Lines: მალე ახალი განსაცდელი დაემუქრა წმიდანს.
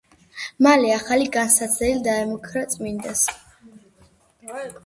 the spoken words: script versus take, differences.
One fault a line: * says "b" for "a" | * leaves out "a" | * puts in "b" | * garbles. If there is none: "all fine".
all fine